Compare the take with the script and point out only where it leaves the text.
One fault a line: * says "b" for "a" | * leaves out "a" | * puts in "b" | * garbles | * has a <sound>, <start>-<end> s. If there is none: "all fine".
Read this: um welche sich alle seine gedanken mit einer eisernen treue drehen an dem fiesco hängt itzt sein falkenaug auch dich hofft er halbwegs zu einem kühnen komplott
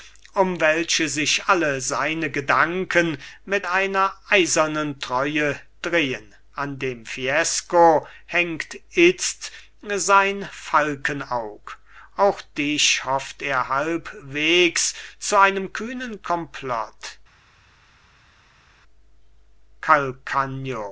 all fine